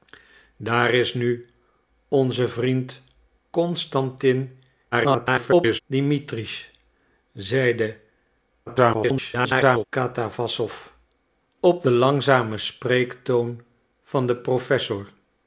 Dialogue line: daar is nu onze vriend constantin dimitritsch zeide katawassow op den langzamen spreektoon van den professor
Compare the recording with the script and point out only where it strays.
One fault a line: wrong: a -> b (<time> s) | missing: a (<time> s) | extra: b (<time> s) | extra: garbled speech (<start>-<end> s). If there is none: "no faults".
extra: garbled speech (4.9-5.8 s)
extra: garbled speech (8.7-9.8 s)